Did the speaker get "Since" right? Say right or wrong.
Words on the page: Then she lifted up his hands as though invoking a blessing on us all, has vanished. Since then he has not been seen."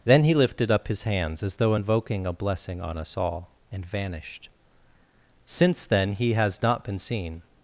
right